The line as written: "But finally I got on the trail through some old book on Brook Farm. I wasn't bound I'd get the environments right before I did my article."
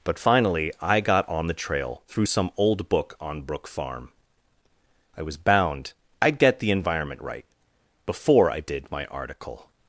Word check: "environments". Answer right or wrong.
wrong